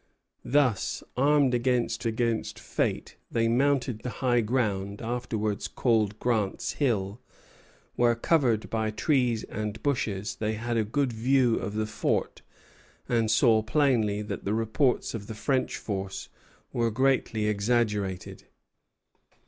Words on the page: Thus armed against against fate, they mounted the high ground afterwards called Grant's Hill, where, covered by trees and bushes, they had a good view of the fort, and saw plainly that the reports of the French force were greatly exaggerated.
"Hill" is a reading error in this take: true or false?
false